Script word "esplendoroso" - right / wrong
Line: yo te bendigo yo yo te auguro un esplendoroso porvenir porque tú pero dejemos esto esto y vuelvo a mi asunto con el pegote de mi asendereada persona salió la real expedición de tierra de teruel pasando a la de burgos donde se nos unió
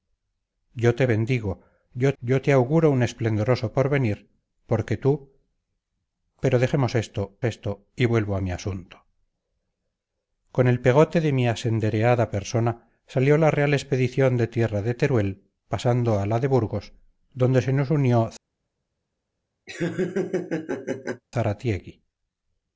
right